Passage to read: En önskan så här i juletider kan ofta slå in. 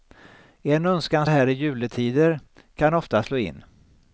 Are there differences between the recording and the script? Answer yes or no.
yes